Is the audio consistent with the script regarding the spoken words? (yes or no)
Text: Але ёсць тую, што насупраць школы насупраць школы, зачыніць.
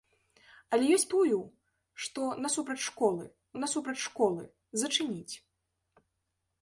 yes